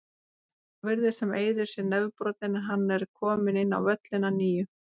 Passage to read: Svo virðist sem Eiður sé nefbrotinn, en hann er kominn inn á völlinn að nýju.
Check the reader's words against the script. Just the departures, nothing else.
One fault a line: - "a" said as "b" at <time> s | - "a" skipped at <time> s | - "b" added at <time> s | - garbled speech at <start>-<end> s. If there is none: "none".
none